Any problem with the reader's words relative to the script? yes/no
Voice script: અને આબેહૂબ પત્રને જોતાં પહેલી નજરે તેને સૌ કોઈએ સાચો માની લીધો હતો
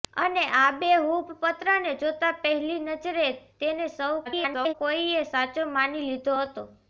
yes